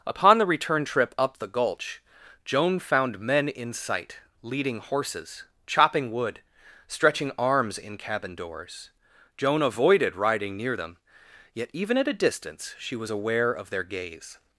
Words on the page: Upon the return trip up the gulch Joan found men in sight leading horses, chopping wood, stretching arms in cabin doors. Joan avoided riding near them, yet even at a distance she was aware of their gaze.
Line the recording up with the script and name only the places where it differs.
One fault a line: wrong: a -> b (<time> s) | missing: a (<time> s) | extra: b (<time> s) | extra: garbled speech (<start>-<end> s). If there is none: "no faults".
no faults